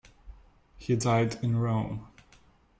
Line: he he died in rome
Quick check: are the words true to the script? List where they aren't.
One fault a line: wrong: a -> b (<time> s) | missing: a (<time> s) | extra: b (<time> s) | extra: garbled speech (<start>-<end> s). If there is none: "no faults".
missing: he (0.9 s)